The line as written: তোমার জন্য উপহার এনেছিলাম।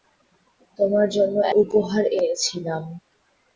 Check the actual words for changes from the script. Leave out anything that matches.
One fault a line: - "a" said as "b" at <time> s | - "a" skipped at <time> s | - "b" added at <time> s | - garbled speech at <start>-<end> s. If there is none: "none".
none